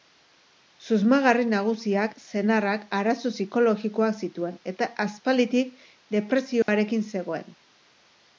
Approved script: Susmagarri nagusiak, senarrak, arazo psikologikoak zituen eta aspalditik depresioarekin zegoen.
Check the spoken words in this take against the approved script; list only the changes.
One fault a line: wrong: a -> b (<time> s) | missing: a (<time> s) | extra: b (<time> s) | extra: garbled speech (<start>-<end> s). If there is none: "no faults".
no faults